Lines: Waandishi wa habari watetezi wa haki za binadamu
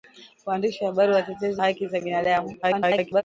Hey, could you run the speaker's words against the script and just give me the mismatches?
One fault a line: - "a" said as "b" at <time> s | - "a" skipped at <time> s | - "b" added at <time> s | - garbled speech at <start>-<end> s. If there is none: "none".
- "wa" skipped at 1.6 s
- garbled speech at 2.6-3.2 s